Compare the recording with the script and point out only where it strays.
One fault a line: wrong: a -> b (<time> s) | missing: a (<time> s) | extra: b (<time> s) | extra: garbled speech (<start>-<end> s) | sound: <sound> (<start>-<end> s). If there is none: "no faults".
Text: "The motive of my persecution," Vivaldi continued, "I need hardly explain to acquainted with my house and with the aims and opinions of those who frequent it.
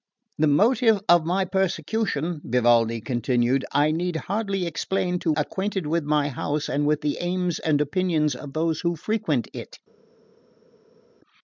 no faults